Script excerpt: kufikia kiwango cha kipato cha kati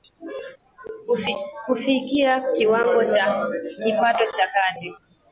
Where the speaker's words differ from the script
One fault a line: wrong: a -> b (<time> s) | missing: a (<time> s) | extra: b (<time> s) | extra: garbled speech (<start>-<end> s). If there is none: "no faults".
no faults